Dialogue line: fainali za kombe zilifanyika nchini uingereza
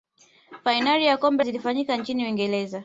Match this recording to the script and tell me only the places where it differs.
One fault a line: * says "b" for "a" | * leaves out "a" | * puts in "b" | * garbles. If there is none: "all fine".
all fine